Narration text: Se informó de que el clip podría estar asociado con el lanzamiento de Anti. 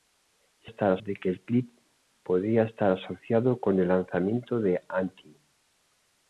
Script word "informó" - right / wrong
wrong